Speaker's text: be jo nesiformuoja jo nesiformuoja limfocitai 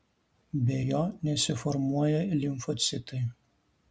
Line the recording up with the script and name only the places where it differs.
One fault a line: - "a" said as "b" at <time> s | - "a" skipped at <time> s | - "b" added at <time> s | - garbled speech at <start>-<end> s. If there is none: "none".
- "jo nesiformuoja" skipped at 2.2 s